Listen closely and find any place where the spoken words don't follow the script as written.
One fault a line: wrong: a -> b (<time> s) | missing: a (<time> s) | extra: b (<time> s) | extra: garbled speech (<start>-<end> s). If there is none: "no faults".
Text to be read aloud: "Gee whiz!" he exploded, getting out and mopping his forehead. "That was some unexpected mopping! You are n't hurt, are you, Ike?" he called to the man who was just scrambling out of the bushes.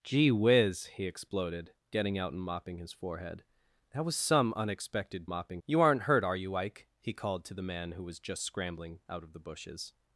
no faults